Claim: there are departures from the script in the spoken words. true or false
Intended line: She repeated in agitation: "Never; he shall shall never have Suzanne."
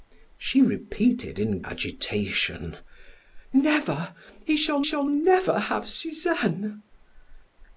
false